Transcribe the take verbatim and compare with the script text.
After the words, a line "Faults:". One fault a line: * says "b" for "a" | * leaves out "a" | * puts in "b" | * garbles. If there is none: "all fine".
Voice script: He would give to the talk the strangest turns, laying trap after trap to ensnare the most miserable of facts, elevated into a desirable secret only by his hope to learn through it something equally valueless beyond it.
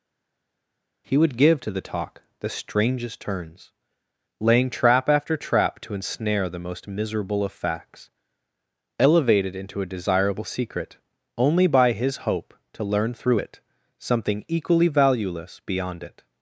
He would give to the talk the strangest turns, laying trap after trap to ensnare the most miserable of facts, elevated into a desirable secret only by his hope to learn through it something equally valueless beyond it.
Faults:
all fine